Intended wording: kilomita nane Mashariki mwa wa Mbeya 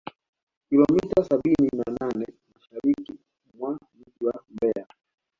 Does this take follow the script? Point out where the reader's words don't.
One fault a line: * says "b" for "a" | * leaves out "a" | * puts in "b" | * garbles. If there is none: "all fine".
* puts in "sabini na"
* puts in "mji"